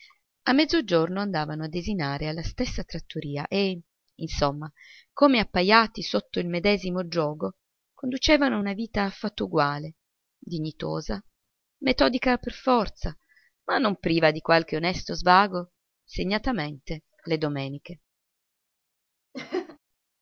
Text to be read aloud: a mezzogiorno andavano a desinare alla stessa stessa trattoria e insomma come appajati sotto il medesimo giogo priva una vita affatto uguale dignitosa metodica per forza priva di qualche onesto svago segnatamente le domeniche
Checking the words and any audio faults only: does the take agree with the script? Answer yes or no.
no